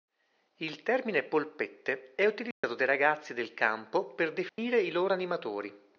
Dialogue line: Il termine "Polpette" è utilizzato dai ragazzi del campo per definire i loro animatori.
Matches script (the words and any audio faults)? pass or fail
fail